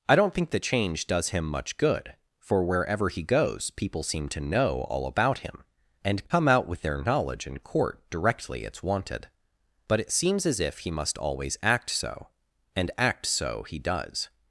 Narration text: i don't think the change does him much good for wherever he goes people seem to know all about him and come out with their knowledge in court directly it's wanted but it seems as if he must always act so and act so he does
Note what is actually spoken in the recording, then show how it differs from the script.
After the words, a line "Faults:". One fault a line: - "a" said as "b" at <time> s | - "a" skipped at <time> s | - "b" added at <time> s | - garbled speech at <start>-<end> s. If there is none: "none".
i don't think the change does him much good for wherever he goes people seem to know all about him and come out with their knowledge in court directly it's wanted but it seems as if he must always act so and act so he does
Faults:
none